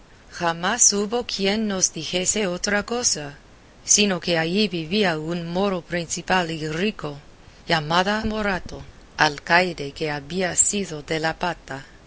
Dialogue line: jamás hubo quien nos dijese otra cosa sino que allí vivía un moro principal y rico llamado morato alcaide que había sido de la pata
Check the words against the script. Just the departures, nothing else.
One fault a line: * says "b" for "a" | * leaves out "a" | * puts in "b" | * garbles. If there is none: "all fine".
all fine